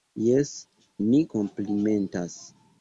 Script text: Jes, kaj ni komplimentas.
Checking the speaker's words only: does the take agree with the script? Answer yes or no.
no